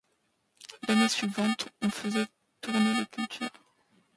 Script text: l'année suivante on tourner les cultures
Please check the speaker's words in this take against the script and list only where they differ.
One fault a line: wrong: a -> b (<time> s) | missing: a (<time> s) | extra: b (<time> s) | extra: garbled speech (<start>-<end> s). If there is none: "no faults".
extra: faisait (1.9 s)